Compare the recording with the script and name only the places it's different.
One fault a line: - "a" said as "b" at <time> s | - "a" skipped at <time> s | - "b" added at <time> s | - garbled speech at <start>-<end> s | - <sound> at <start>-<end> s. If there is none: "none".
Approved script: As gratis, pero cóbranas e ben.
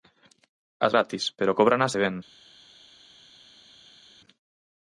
none